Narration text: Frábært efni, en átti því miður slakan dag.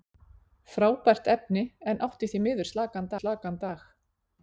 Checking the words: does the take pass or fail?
fail